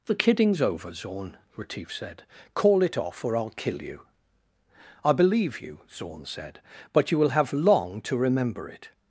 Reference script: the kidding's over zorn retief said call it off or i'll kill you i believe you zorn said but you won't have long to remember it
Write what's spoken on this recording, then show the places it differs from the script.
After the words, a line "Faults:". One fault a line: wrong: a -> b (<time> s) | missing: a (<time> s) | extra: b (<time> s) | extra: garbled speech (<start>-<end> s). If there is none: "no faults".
the kidding's over zorn retief said call it off or i'll kill you i believe you zorn said but you will have long to remember it
Faults:
wrong: won't -> will (7.2 s)